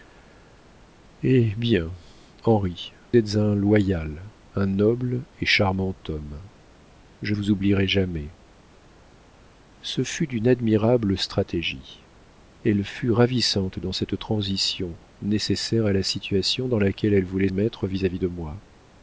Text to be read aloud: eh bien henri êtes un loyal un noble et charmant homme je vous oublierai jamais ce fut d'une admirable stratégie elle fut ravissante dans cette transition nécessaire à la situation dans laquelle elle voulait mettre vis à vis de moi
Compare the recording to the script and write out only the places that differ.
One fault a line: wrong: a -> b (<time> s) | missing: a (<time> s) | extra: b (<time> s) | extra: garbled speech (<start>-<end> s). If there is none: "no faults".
no faults